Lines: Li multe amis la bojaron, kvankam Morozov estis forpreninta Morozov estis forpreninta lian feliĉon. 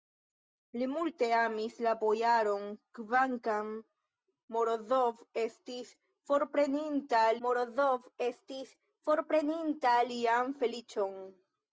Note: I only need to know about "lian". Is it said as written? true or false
true